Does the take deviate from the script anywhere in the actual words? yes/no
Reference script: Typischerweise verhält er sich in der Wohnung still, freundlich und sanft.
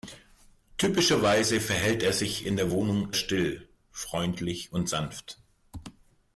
no